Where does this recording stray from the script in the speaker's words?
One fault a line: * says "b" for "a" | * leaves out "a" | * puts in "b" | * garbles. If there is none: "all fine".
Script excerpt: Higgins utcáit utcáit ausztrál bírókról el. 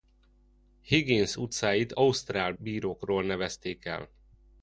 * leaves out "utcáit"
* puts in "nevezték"